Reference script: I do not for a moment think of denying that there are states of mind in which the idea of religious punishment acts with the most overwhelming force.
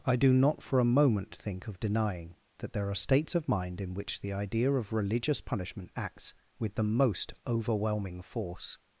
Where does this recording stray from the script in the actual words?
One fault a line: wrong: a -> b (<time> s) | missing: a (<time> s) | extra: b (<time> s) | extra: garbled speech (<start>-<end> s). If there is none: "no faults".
no faults